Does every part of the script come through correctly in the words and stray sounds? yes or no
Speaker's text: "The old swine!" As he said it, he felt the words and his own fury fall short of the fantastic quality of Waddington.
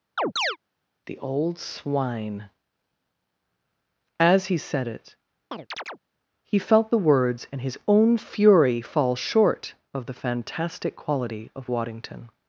no